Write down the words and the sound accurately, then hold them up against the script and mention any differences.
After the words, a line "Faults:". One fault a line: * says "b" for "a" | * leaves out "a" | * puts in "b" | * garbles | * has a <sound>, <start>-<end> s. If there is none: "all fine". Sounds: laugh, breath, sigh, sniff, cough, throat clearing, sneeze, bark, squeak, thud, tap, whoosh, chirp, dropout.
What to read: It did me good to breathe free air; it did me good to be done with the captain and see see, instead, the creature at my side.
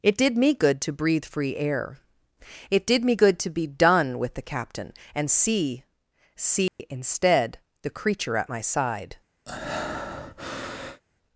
It did me good to breathe free air; it did me good to be done with the captain and see see, instead, the creature at my side.
Faults:
* has a dropout, 6.7-6.8 s
* has a breath, 9.5-11.0 s